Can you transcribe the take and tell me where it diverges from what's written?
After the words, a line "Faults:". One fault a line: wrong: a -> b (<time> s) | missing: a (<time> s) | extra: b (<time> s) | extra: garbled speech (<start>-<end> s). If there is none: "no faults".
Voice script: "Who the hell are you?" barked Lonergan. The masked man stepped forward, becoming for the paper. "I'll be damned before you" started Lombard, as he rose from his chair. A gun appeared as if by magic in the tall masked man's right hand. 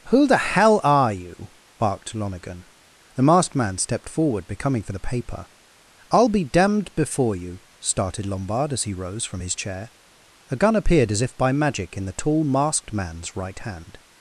"Who the hell are you?" barked Lonergan. The masked man stepped forward, becoming for the paper. "I'll be damned before you" started Lombard, as he rose from his chair. A gun appeared as if by magic in the tall masked man's right hand.
Faults:
no faults